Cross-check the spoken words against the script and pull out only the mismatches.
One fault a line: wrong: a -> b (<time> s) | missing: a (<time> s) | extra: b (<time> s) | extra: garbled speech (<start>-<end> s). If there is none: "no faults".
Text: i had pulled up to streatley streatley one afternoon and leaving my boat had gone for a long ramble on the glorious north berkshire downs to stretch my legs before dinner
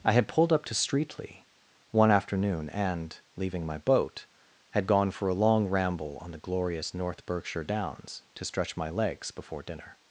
missing: streatley (1.4 s)